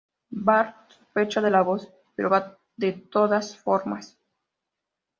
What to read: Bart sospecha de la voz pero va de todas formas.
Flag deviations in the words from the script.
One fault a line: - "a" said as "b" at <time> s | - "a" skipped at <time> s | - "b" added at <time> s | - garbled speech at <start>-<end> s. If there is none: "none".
none